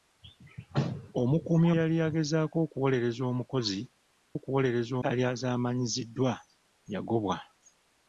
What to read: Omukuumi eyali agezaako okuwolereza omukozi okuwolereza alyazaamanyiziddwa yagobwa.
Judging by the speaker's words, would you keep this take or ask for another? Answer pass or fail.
pass